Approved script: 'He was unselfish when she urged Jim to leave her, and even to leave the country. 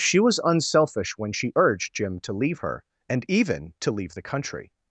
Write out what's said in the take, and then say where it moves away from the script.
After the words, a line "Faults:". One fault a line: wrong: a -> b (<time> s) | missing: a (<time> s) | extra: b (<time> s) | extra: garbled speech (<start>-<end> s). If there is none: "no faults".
'She was unselfish when she urged Jim to leave her, and even to leave the country.
Faults:
wrong: He -> She (0.0 s)